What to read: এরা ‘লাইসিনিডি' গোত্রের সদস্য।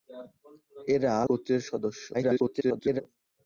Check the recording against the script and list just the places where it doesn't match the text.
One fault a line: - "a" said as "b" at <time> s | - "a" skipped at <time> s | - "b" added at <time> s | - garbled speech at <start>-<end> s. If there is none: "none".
- "লাইসিনিডি" skipped at 1.1 s
- garbled speech at 2.1-3.0 s